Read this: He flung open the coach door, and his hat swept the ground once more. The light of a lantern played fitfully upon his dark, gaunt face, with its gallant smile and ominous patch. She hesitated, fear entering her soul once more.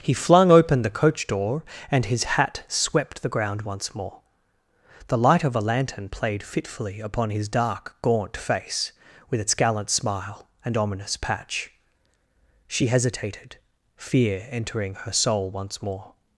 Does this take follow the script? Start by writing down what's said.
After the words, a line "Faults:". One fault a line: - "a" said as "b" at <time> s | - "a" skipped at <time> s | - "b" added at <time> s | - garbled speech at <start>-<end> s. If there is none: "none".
He flung open the coach door, and his hat swept the ground once more. The light of a lantern played fitfully upon his dark, gaunt face, with its gallant smile and ominous patch. She hesitated, fear entering her soul once more.
Faults:
none